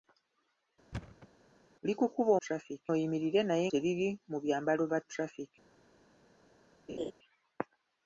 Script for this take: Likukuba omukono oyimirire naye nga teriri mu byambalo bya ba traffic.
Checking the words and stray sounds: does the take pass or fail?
fail